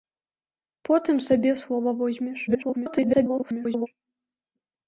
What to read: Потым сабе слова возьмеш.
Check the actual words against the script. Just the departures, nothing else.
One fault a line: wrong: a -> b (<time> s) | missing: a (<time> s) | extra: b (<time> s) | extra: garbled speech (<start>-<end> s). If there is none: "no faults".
extra: garbled speech (2.5-3.9 s)